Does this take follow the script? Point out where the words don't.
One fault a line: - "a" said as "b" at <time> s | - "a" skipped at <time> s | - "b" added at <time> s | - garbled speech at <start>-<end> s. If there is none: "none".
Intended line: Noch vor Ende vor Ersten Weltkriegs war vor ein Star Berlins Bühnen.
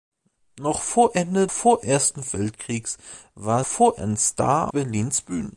none